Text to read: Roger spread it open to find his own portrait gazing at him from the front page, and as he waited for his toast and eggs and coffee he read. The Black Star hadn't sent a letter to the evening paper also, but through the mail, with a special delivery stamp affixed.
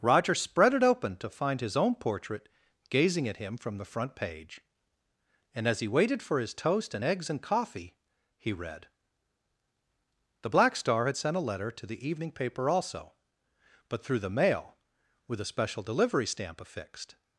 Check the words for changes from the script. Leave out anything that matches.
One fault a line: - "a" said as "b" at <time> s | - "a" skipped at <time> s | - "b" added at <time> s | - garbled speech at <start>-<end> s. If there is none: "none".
- "hadn't" said as "had" at 11.1 s